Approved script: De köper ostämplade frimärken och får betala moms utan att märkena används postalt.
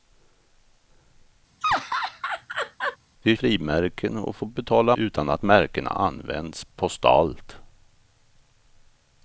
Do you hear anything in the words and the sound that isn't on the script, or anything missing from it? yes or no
yes